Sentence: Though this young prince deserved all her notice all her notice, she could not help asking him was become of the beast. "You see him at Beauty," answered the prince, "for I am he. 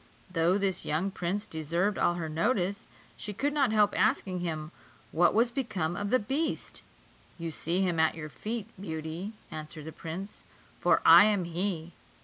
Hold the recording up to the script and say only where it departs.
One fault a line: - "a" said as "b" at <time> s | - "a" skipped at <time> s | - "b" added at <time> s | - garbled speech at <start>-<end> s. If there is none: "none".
- "all her notice" skipped at 2.9 s
- "what" added at 5.1 s
- "your feet" added at 8.2 s